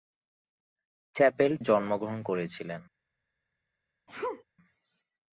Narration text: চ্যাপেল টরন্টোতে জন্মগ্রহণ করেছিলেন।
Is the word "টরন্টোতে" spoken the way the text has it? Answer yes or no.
no